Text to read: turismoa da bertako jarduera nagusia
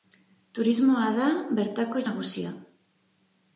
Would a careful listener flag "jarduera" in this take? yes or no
yes